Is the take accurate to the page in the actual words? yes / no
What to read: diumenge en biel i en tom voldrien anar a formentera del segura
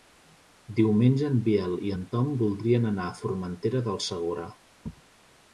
yes